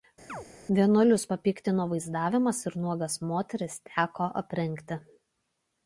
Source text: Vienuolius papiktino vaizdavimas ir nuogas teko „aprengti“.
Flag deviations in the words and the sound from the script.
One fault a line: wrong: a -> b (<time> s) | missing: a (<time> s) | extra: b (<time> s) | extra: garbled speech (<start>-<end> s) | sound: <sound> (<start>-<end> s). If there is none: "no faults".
sound: chirp (0.3-0.5 s)
extra: moteris (3.3 s)